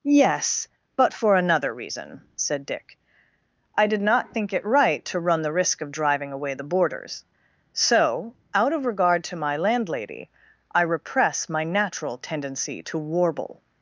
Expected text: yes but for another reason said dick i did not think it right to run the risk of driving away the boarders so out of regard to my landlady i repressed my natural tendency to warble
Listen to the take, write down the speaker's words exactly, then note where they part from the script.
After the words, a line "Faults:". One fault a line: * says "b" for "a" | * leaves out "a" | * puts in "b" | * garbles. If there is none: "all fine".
yes but for another reason said dick i did not think it right to run the risk of driving away the boarders so out of regard to my landlady i repress my natural tendency to warble
Faults:
* says "repress" for "repressed"